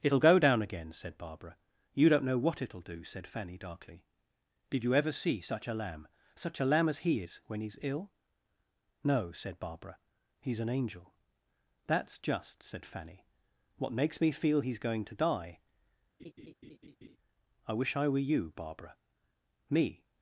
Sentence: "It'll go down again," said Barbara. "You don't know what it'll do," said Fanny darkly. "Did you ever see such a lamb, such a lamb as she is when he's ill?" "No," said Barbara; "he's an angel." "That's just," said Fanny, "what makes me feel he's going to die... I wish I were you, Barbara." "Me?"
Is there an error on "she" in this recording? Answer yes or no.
yes